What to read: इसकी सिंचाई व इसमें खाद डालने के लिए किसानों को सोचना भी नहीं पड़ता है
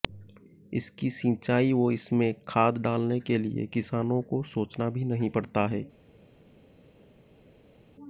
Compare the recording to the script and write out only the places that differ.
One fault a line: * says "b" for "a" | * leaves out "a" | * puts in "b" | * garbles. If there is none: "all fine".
all fine